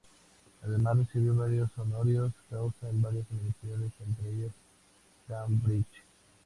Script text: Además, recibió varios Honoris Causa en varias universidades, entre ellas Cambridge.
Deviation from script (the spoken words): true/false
false